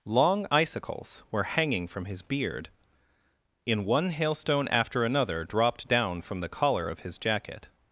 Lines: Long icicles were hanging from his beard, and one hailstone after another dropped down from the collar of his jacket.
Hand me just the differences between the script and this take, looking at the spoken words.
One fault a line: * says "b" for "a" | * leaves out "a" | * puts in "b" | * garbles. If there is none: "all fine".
* says "in" for "and"